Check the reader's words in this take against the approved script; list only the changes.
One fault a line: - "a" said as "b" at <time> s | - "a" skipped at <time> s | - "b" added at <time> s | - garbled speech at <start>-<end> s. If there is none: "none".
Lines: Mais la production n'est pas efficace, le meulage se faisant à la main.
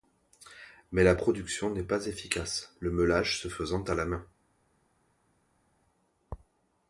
none